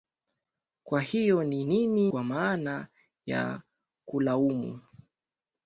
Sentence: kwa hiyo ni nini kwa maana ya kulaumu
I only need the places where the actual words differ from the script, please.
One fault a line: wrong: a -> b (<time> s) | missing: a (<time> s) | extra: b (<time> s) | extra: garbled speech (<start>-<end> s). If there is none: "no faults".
no faults